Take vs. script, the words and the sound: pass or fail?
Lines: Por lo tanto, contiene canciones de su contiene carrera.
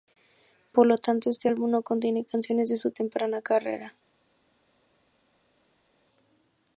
fail